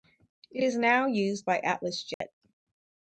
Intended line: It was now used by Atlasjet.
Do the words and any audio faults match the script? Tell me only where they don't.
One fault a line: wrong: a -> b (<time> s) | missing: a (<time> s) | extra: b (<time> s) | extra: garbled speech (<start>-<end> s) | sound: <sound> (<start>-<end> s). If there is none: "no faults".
wrong: was -> is (0.6 s)
sound: dropout (2.1-2.2 s)